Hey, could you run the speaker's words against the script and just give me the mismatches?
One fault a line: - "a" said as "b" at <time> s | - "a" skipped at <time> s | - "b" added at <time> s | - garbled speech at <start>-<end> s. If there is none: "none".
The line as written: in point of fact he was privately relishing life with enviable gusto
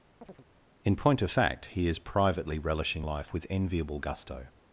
- "was" said as "is" at 1.9 s